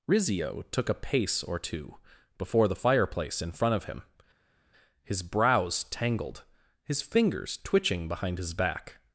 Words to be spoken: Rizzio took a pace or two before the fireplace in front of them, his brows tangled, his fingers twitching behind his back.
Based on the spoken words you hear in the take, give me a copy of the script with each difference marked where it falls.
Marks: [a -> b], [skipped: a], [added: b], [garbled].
Rizzio took a pace or two before the fireplace in front of [them, -> him] his brows tangled, his fingers twitching behind his back.